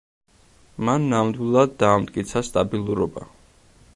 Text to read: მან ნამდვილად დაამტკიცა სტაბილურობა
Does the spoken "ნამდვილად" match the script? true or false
true